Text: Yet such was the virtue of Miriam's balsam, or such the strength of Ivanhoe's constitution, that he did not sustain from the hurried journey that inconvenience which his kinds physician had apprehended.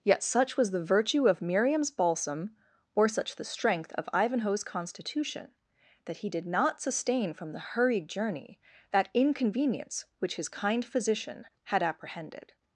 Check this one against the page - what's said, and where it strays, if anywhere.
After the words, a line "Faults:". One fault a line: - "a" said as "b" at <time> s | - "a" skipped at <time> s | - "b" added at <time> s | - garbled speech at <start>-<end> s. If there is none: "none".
Yet such was the virtue of Miriam's balsam, or such the strength of Ivanhoe's constitution, that he did not sustain from the hurried journey that inconvenience which his kind physician had apprehended.
Faults:
- "kinds" said as "kind" at 10.5 s